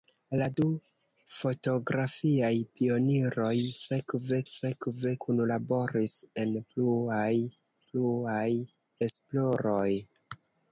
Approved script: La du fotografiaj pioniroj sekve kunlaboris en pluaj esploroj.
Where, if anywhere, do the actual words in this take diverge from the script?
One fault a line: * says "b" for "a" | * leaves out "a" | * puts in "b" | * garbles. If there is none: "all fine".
* puts in "sekve"
* puts in "pluaj"